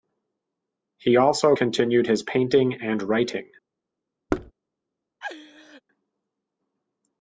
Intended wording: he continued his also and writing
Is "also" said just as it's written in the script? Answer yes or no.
no